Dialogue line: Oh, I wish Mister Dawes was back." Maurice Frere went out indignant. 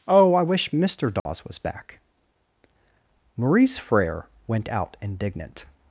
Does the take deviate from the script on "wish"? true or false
false